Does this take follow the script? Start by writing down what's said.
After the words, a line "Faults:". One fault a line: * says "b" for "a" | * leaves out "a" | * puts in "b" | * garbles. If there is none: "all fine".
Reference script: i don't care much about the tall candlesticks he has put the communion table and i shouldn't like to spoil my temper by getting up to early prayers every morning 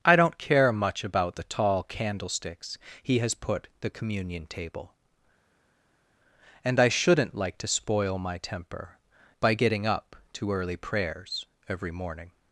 i don't care much about the tall candlesticks he has put the communion table and i shouldn't like to spoil my temper by getting up to early prayers every morning
Faults:
all fine